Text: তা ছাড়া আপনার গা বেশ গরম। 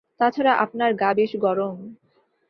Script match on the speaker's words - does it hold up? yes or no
yes